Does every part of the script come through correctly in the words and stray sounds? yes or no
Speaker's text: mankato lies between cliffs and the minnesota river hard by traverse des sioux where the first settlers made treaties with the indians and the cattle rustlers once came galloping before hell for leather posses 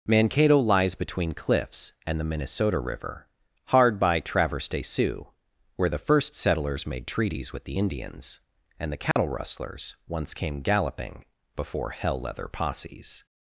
no